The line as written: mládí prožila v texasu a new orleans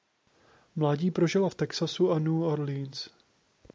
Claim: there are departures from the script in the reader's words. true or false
false